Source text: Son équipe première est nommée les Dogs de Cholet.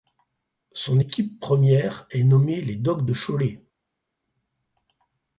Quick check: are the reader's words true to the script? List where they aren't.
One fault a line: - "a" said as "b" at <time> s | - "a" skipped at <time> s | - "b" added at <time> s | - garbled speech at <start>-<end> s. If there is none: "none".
none